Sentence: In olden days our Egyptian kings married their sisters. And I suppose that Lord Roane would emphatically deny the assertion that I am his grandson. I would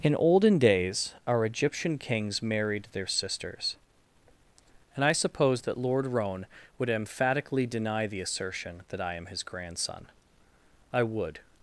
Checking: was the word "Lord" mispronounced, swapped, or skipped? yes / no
no